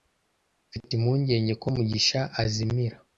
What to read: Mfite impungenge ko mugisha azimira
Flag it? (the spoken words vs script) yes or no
no